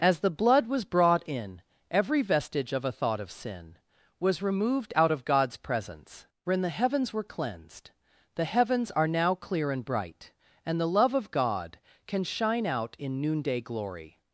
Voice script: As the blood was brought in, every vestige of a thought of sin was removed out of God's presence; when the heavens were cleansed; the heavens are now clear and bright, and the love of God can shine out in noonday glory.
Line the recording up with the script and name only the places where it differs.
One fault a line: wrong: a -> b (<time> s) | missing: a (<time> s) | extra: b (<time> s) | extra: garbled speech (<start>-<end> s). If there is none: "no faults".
no faults